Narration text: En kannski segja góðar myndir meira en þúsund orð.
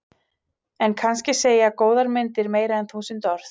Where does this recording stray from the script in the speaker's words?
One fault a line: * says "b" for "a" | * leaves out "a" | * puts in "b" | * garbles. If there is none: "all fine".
all fine